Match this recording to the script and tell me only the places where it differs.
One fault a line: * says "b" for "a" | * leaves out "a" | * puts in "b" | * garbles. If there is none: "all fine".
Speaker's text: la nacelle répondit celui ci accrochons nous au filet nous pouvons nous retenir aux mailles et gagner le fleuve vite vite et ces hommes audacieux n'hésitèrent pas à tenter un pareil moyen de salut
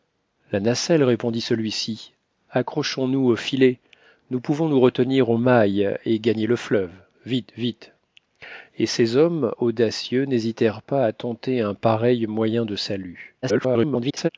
* garbles